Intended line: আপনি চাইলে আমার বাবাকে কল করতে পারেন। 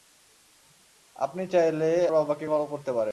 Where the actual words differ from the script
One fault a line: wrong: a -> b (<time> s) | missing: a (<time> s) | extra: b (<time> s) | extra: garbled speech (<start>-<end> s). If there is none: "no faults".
missing: আমার (1.9 s)